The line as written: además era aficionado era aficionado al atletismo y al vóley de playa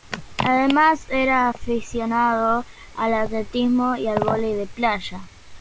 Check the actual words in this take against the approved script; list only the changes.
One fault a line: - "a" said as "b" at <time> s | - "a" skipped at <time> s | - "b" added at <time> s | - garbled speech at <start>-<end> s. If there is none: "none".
- "era aficionado" skipped at 2.6 s